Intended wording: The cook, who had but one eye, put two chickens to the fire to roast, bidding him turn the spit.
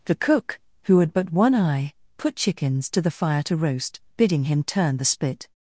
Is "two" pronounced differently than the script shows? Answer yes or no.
yes